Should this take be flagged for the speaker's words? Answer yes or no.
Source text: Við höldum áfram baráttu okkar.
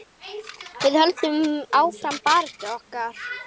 no